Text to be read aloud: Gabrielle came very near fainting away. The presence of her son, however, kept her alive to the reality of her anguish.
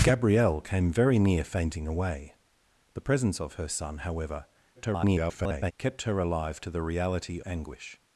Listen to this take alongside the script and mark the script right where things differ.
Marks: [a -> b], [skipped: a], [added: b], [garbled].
Gabrielle came very near fainting away. The presence of her son, however, [garbled] kept her alive to the reality [skipped: of her] anguish.